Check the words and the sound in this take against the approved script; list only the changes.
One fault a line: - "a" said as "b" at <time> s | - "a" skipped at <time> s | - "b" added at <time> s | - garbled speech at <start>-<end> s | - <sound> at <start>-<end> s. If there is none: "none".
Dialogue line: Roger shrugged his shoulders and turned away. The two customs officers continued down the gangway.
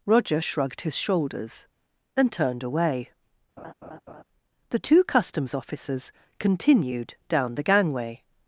- laugh at 3.6-4.2 s